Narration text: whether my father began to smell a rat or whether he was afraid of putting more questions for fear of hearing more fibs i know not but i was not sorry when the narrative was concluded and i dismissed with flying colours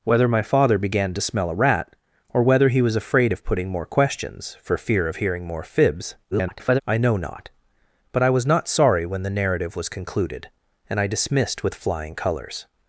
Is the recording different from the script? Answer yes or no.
yes